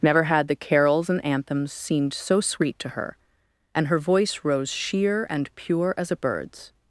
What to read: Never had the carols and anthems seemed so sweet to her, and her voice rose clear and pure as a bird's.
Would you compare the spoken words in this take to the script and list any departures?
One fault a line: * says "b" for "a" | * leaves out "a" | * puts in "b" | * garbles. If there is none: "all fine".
* says "sheer" for "clear"